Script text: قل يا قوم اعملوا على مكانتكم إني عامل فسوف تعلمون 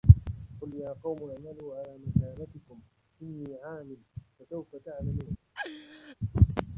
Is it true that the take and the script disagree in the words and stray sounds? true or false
true